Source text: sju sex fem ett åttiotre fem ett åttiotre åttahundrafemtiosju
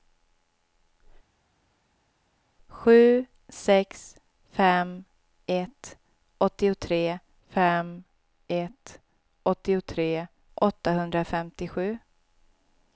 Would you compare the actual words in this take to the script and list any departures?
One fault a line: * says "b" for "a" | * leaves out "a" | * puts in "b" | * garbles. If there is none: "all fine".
all fine